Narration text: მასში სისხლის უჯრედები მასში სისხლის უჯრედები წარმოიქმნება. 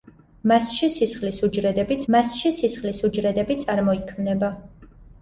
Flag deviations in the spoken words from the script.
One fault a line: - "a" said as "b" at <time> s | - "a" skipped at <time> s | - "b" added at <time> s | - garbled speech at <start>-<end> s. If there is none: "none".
none